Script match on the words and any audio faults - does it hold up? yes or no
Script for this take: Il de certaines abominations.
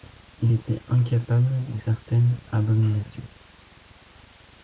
no